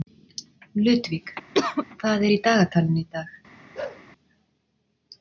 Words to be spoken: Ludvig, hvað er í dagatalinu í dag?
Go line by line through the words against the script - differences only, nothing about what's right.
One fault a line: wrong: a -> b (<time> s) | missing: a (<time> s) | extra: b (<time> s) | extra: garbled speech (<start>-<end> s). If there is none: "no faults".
no faults